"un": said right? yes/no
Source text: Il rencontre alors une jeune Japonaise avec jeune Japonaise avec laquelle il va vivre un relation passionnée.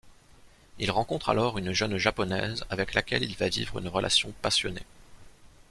no